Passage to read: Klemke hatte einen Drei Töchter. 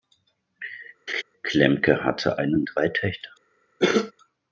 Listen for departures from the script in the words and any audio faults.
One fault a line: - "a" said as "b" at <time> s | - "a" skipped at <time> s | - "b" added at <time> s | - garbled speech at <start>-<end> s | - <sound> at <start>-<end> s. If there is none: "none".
- laugh at 1.1-1.2 s
- cough at 3.8-4.1 s